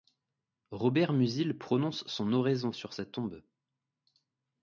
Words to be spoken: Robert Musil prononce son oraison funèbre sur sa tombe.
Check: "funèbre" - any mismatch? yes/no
yes